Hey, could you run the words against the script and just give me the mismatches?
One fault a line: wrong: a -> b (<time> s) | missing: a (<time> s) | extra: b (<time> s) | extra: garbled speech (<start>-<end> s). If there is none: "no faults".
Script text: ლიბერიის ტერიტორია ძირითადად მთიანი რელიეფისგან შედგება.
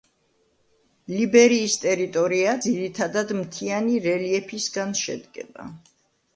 no faults